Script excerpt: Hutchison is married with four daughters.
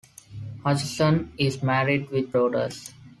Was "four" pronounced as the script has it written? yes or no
no